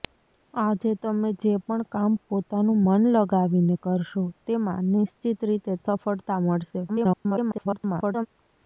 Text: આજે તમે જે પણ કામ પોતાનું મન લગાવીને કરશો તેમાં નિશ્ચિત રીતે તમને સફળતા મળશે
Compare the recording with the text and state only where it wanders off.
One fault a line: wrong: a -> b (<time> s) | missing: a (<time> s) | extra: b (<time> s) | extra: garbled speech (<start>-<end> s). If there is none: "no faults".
missing: તમને (5.7 s)
extra: garbled speech (6.9-8.3 s)